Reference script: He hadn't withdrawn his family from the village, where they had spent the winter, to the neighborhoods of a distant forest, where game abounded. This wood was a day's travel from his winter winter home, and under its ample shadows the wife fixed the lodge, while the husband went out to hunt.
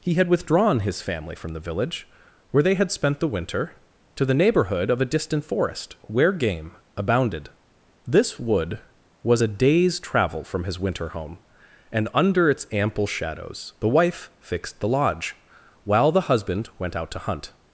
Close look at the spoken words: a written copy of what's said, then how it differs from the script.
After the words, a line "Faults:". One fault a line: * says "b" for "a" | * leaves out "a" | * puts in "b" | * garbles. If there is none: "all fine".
He had withdrawn his family from the village, where they had spent the winter, to the neighborhood of a distant forest, where game abounded. This wood was a day's travel from his winter home, and under its ample shadows the wife fixed the lodge, while the husband went out to hunt.
Faults:
* says "had" for "hadn't"
* says "neighborhood" for "neighborhoods"
* leaves out "winter"